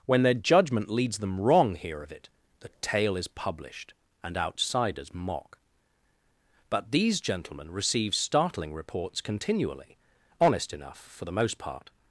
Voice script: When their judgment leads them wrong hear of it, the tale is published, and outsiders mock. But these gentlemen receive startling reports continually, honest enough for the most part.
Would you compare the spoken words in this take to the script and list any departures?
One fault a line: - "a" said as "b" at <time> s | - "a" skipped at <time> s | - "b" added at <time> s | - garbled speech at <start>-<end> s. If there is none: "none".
none